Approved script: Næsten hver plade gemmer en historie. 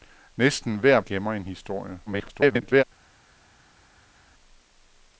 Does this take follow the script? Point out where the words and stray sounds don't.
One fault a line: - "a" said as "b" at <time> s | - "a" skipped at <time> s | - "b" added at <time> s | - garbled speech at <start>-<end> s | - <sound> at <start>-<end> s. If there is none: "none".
- "plade" skipped at 1.0 s
- garbled speech at 2.1-2.8 s